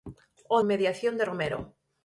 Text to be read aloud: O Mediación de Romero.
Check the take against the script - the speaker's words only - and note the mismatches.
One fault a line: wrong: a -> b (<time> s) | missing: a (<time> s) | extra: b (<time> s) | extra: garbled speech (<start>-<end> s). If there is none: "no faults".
no faults